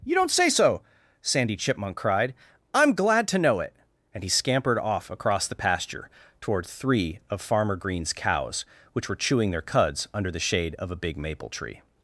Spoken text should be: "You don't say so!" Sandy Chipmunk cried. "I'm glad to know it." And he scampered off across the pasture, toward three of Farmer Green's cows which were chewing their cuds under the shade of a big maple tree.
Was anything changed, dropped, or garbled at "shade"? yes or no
no